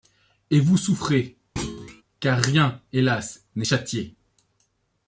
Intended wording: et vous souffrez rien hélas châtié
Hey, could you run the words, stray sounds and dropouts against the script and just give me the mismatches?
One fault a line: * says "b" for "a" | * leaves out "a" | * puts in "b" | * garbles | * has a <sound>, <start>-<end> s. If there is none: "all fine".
* has a thud, 1.6-2.0 s
* puts in "car"
* puts in "n'est"